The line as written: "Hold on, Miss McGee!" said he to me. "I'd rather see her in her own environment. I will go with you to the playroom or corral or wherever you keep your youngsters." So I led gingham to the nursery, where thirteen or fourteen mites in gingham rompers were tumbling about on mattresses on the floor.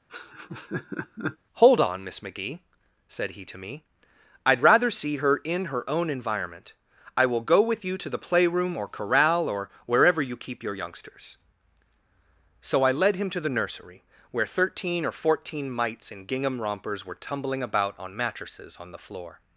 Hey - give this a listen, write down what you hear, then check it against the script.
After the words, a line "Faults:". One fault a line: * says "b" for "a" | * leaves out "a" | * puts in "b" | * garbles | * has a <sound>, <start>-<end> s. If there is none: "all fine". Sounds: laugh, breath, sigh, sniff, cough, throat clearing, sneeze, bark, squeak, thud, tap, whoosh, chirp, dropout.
"Hold on, Miss McGee!" said he to me. "I'd rather see her in her own environment. I will go with you to the playroom or corral or wherever you keep your youngsters." So I led him to the nursery, where thirteen or fourteen mites in gingham rompers were tumbling about on mattresses on the floor.
Faults:
* has a laugh, 0.1-1.4 s
* says "him" for "gingham"